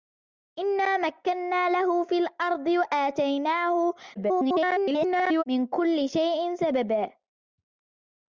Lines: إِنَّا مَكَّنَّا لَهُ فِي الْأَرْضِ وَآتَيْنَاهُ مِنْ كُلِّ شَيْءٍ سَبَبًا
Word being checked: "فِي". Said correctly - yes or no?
yes